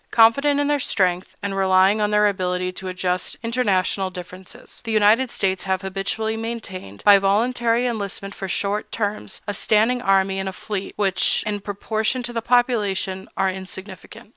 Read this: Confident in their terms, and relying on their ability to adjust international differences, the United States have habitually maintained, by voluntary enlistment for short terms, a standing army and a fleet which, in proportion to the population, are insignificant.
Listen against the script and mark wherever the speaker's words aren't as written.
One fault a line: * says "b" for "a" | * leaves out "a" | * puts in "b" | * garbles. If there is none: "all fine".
* says "strength" for "terms"